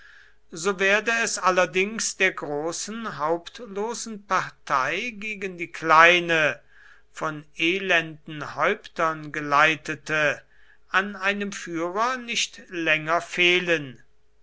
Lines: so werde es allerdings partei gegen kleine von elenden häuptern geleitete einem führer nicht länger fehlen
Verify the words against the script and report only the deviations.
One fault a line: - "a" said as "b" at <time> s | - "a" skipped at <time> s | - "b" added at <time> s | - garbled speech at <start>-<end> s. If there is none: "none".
- "der großen hauptlosen" added at 2.2 s
- "die" added at 5.6 s
- "an" added at 10.9 s